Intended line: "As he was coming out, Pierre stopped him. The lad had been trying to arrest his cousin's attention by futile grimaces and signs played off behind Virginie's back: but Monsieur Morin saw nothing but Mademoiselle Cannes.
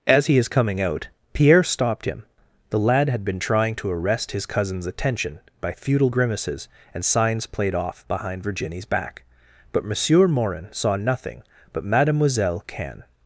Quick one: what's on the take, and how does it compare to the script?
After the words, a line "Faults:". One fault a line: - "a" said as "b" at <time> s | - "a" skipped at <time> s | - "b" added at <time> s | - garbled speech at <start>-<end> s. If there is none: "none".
"As he is coming out, Pierre stopped him. The lad had been trying to arrest his cousin's attention by futile grimaces and signs played off behind Virginie's back: but Monsieur Morin saw nothing but Mademoiselle Cannes.
Faults:
- "was" said as "is" at 0.4 s